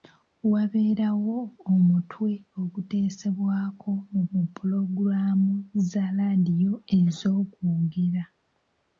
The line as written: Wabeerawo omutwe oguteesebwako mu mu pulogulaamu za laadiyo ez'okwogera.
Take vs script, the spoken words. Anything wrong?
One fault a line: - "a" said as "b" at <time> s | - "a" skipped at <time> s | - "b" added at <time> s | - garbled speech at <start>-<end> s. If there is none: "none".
none